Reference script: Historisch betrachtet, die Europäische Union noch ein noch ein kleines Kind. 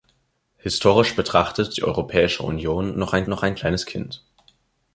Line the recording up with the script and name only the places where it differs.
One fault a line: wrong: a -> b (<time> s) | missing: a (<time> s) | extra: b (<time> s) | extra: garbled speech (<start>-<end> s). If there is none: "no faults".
no faults